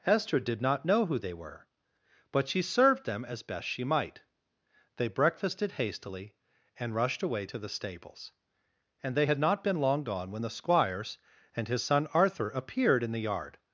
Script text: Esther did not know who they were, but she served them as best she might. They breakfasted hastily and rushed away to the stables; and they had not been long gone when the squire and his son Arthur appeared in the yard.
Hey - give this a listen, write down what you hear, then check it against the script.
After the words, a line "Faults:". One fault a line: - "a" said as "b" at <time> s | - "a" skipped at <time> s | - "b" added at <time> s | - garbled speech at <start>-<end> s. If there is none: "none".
Esther did not know who they were, but she served them as best she might. They breakfasted hastily and rushed away to the stables; and they had not been long gone when the squires and his son Arthur appeared in the yard.
Faults:
- "squire" said as "squires" at 10.5 s